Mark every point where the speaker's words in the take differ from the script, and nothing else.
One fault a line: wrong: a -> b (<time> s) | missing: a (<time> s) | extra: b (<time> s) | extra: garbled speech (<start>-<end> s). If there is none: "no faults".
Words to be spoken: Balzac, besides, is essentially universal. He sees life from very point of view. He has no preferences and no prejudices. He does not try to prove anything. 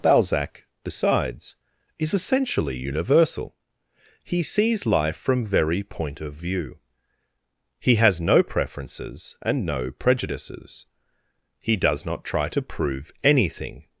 no faults